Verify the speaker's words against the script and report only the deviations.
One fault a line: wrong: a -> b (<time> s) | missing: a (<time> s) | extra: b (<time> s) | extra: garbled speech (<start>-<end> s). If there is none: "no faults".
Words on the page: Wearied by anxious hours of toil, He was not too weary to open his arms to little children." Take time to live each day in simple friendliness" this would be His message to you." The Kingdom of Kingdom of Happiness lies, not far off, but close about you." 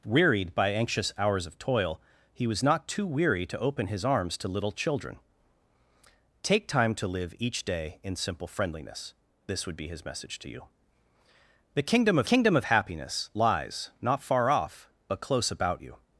no faults